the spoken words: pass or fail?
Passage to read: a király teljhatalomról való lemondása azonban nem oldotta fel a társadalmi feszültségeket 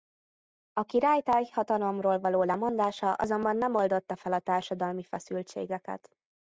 pass